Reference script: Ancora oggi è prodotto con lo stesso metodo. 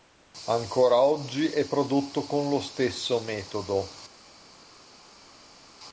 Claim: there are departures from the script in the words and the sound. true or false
false